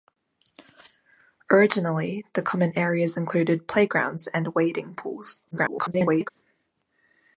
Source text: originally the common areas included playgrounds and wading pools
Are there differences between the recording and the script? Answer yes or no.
yes